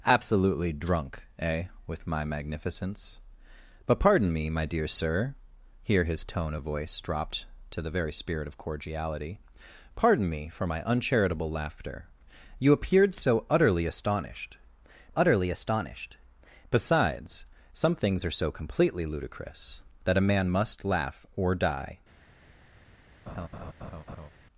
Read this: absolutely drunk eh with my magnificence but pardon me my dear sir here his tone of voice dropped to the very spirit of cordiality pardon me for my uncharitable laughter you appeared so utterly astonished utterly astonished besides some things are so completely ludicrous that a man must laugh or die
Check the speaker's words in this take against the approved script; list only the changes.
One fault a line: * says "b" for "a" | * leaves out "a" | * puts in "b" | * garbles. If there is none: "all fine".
all fine